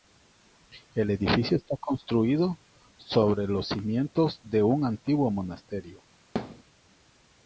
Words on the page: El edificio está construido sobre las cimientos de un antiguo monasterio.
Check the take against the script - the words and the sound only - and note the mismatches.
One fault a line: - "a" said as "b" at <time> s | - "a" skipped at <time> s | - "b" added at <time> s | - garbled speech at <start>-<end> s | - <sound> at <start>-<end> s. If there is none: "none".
- "las" said as "los" at 3.5 s
- thud at 6.4-6.6 s